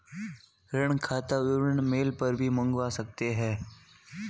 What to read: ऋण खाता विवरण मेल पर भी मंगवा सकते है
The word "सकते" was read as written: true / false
true